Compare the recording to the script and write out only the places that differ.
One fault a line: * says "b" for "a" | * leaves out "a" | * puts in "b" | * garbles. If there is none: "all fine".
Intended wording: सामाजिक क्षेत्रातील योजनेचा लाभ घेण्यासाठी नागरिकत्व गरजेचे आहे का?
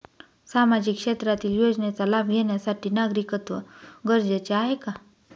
all fine